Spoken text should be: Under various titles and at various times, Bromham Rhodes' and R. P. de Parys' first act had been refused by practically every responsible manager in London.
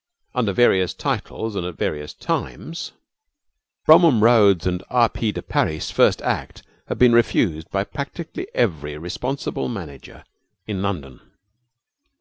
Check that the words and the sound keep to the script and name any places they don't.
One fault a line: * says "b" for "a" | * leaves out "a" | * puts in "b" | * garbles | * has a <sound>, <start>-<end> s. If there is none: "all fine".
all fine